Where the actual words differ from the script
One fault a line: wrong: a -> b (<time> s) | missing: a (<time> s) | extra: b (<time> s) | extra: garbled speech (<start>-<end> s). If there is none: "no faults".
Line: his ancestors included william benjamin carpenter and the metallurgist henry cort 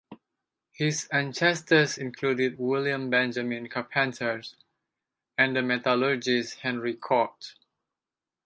no faults